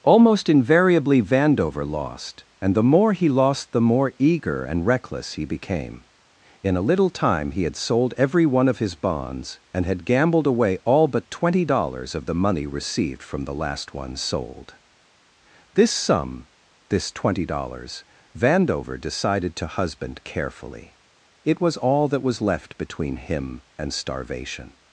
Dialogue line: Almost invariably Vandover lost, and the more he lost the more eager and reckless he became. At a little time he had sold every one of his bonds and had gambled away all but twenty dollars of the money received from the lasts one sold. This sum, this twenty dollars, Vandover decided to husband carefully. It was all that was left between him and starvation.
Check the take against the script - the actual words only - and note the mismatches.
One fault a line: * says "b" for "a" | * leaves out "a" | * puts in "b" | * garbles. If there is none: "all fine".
* says "In" for "At"
* says "last" for "lasts"